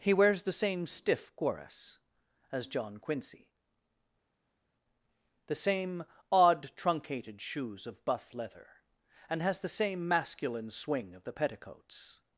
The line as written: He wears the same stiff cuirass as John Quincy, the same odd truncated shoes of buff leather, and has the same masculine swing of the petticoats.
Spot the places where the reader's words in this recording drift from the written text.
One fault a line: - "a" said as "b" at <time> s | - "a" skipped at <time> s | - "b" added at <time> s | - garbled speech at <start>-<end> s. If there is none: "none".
none